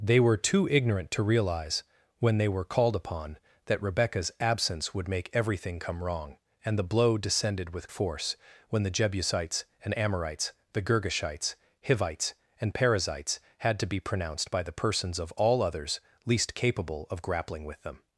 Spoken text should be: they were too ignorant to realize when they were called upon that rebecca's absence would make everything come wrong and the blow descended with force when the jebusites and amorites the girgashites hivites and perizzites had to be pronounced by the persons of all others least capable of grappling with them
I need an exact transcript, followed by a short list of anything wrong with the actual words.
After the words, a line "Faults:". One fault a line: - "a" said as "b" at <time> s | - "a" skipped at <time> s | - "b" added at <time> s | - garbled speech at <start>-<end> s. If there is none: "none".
they were too ignorant to realize when they were called upon that rebecca's absence would make everything come wrong and the blow descended with force when the jebusites and amorites the girgashites hivites and perizzites had to be pronounced by the persons of all others least capable of grappling with them
Faults:
none